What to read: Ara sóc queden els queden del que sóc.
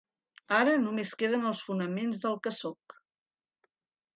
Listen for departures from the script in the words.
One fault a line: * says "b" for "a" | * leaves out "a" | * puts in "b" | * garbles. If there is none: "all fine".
* says "només" for "sóc"
* says "fonaments" for "queden"